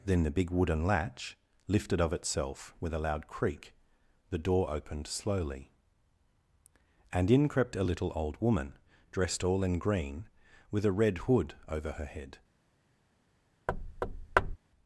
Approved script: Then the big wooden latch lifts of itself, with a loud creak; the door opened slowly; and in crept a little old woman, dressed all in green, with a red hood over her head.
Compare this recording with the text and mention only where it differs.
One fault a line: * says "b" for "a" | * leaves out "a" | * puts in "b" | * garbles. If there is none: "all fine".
* says "lifted" for "lifts"